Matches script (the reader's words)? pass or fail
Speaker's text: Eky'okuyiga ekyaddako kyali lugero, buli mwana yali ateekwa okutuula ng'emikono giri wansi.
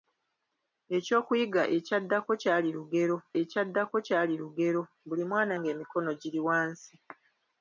fail